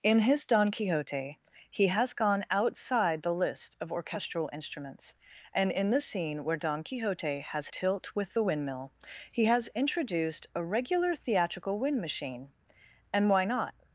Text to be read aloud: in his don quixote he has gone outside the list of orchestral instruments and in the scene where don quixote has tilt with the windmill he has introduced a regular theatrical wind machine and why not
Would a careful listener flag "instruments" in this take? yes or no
no